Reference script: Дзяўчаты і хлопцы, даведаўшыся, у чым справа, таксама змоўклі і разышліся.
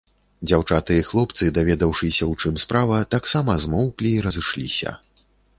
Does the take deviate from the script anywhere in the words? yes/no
no